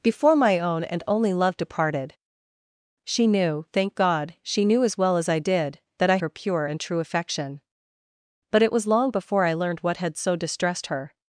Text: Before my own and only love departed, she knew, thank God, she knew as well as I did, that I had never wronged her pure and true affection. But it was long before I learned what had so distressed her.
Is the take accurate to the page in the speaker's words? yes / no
no